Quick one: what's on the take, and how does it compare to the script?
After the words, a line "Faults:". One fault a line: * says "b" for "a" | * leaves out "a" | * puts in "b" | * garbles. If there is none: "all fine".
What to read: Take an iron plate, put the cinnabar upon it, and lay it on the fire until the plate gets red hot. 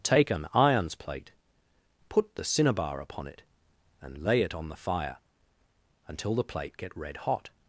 Take an irons plate, put the cinnabar upon it, and lay it on the fire until the plate get red hot.
Faults:
* says "irons" for "iron"
* says "get" for "gets"